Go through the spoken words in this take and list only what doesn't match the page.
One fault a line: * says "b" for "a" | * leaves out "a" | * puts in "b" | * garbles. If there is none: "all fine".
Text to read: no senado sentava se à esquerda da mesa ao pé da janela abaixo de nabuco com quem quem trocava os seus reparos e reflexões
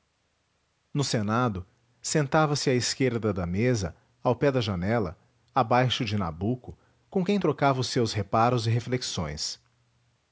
* leaves out "quem"